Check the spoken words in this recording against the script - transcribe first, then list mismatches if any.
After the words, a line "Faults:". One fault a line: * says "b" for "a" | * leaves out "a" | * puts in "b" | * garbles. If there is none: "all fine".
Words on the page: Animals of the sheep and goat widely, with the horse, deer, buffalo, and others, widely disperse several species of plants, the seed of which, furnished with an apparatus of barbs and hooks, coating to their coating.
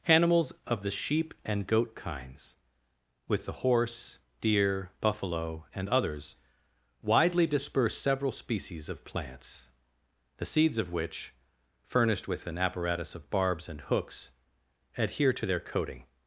Animals of the sheep and goat kinds, with the horse, deer, buffalo, and others, widely disperse several species of plants, the seeds of which, furnished with an apparatus of barbs and hooks, adhere to their coating.
Faults:
* says "kinds" for "widely"
* says "seeds" for "seed"
* says "adhere" for "coating"